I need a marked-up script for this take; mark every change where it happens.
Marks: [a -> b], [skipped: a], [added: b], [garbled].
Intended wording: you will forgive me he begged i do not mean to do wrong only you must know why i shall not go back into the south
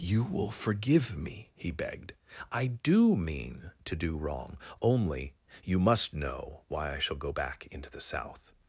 you will forgive me he begged i do [skipped: not] mean to do wrong only you must know why i shall [skipped: not] go back into the south